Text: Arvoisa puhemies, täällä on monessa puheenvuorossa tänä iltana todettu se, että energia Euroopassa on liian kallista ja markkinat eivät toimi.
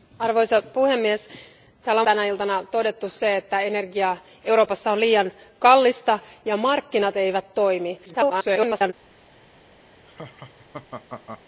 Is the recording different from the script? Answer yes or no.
yes